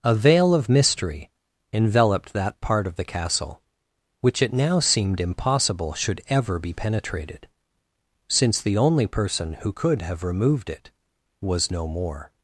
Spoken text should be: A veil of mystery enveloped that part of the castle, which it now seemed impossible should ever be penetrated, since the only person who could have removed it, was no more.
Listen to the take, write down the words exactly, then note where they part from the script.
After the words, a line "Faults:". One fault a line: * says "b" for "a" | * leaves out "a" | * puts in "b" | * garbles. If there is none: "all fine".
A veil of mystery enveloped that part of the castle, which it now seemed impossible should ever be penetrated, since the only person who could have removed it, was no more.
Faults:
all fine